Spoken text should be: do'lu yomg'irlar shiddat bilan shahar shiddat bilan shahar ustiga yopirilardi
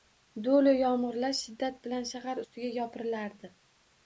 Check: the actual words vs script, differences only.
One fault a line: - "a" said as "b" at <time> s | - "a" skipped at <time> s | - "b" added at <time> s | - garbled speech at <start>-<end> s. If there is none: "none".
- "shiddat bilan shahar" skipped at 2.4 s